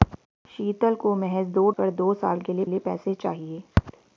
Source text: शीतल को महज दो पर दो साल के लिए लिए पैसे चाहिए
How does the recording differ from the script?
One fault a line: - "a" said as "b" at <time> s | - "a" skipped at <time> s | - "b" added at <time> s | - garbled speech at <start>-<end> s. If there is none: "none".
none